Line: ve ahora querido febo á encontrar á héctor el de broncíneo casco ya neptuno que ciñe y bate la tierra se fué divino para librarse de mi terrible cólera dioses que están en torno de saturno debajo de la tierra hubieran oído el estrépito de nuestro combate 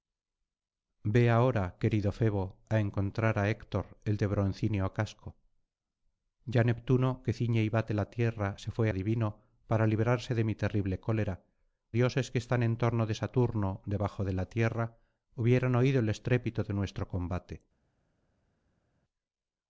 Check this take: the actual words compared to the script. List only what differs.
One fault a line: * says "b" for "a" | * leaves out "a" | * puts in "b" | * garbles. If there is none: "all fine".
all fine